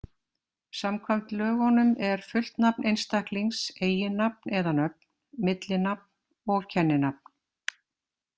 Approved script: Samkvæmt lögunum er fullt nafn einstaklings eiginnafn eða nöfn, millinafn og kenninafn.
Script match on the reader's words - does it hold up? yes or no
yes